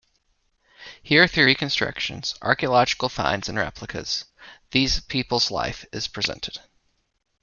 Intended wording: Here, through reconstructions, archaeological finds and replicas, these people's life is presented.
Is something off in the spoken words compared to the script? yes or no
no